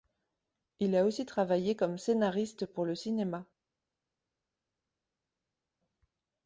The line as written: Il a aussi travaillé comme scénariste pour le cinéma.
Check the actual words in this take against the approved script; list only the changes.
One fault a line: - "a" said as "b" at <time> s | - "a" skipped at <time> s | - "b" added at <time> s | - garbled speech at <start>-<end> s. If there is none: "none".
none